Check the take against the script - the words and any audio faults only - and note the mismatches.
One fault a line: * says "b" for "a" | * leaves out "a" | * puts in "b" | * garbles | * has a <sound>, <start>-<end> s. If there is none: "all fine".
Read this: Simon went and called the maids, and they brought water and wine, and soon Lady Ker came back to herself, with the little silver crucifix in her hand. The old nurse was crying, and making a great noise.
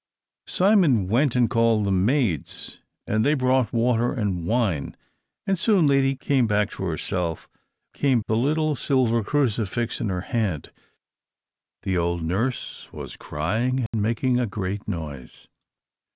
* leaves out "Ker"
* says "came" for "with"
* has a dropout, 13.9-13.9 s